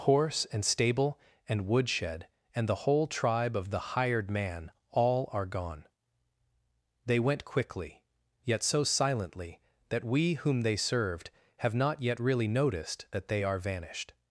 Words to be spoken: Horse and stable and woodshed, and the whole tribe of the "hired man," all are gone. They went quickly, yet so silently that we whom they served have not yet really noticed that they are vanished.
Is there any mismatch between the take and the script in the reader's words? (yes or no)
no